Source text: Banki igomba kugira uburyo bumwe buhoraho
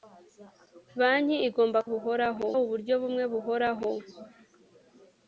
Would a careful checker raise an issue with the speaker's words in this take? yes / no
yes